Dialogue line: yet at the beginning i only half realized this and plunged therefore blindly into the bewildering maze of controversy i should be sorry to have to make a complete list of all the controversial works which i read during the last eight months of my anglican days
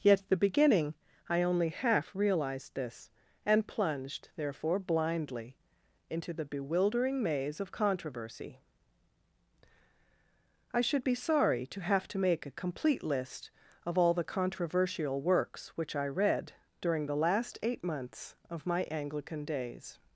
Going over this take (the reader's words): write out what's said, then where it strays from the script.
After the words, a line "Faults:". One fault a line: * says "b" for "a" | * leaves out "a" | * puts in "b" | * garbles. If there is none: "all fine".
yet at the beginning i only half realized this and plunged therefore blindly into the bewildering maze of controversy i should be sorry to have to make a complete list of all the controversial works which i read during the last eight months of my anglican days
Faults:
all fine